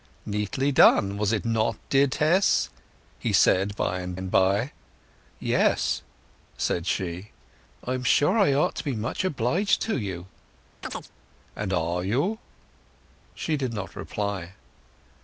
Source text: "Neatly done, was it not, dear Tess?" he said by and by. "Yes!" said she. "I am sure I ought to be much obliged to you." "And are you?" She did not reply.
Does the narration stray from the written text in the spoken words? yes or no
yes